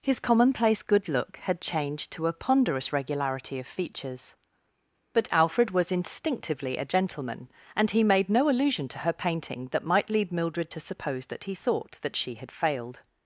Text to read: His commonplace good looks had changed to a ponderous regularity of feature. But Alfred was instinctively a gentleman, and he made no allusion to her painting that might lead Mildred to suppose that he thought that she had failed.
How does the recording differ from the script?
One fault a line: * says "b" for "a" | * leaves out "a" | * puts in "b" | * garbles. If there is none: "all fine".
* says "look" for "looks"
* says "features" for "feature"